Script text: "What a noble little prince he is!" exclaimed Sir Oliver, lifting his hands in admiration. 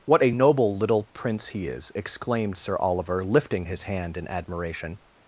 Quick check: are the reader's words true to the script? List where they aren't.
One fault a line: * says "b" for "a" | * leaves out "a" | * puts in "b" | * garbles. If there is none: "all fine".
* says "hand" for "hands"